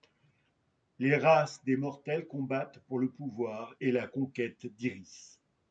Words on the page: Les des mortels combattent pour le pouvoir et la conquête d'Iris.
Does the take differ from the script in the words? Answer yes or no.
yes